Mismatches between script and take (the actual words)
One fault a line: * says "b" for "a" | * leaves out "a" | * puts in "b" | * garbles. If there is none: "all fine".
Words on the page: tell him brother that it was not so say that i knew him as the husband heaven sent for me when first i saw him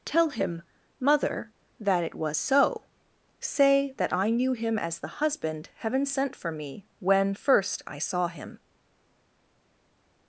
* says "mother" for "brother"
* leaves out "not"